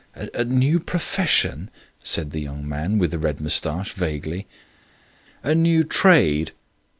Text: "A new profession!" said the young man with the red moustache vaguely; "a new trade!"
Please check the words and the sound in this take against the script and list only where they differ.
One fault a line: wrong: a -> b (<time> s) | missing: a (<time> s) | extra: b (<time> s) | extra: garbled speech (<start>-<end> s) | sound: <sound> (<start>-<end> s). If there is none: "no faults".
no faults